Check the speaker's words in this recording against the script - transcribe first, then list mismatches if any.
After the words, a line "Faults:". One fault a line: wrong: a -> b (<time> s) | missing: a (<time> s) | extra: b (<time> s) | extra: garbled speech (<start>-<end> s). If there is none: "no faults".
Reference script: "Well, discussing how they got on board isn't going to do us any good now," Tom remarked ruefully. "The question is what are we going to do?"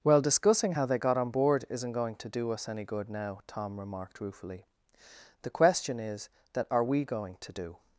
"Well, discussing how they got on board isn't going to do us any good now," Tom remarked ruefully. "The question is that are we going to do?"
Faults:
wrong: what -> that (6.5 s)